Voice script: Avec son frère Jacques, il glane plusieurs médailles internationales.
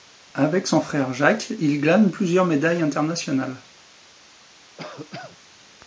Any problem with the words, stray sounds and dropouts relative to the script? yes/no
yes